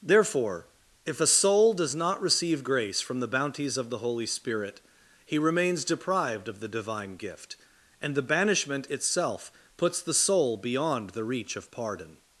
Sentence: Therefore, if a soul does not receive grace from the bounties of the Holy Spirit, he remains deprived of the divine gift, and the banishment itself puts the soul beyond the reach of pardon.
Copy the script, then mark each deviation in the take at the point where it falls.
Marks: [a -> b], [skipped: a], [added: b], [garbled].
Therefore, if a soul does not receive grace from the bounties of the Holy Spirit, he remains deprived of the divine gift, and the banishment itself puts the soul beyond the reach of pardon.